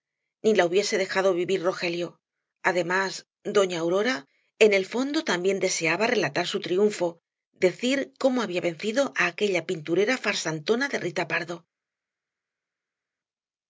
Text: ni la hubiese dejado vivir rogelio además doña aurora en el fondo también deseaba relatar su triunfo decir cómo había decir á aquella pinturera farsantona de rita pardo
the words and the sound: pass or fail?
fail